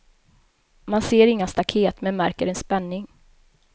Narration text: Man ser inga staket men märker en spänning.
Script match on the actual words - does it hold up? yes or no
yes